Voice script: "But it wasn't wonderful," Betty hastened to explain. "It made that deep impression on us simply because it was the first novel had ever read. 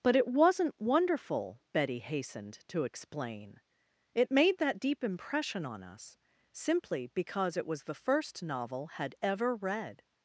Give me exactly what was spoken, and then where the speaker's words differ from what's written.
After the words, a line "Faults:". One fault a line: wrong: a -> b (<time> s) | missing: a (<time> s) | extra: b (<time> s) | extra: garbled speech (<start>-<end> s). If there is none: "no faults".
"But it wasn't wonderful," Betty hastened to explain. "It made that deep impression on us simply because it was the first novel had ever read.
Faults:
no faults